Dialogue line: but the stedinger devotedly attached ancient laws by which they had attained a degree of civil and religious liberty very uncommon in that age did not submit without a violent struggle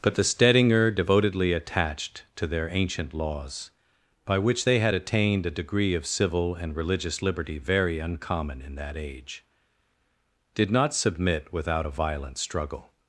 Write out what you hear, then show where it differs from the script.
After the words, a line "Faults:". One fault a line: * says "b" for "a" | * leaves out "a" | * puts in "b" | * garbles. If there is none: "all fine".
but the stedinger devotedly attached to their ancient laws by which they had attained a degree of civil and religious liberty very uncommon in that age did not submit without a violent struggle
Faults:
* puts in "to their"